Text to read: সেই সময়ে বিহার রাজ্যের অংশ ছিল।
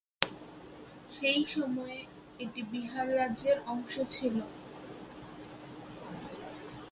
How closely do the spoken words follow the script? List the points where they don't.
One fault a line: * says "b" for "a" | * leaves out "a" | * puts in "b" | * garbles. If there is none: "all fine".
* puts in "এটি"